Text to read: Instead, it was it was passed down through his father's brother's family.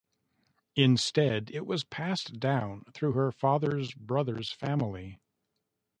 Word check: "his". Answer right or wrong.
wrong